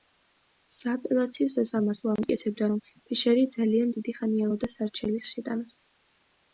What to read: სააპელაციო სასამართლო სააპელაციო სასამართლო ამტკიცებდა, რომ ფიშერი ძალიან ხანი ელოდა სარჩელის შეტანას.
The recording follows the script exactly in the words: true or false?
false